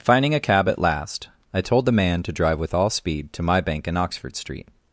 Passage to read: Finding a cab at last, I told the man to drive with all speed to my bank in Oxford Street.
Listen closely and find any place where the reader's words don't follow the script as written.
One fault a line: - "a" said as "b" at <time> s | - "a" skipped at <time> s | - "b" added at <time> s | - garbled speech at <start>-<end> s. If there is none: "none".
none